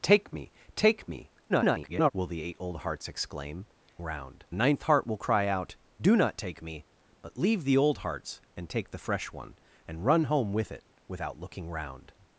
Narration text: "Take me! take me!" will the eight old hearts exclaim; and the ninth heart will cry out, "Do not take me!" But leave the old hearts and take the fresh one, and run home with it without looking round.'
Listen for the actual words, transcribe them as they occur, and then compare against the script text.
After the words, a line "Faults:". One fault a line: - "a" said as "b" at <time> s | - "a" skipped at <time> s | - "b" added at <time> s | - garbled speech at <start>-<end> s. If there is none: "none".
"Take me! take me!" [garbled] will the eight old hearts exclaim; round the ninth heart will cry out, "Do not take me!" But leave the old hearts and take the fresh one, and run home with it without looking round.'
Faults:
- garbled speech at 1.5-2.1 s
- "and" said as "round" at 4.0 s